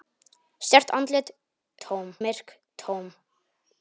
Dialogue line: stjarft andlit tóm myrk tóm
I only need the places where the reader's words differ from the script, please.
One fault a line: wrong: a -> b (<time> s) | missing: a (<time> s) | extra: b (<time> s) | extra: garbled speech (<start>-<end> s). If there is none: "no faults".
no faults